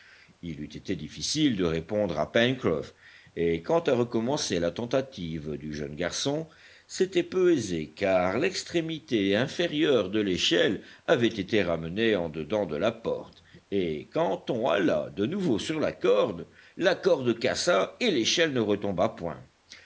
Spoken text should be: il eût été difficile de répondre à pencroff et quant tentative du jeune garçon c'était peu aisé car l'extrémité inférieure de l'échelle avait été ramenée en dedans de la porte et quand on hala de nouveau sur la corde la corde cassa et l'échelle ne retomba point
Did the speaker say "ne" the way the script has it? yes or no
yes